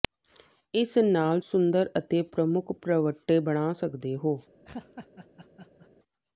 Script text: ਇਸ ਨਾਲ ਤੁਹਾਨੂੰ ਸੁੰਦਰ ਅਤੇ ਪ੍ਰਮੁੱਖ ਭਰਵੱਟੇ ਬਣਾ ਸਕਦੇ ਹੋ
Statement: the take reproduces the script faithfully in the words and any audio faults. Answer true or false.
false